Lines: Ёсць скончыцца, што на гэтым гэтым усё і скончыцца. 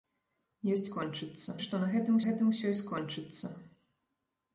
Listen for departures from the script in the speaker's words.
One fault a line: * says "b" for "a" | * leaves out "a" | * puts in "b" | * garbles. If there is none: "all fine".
all fine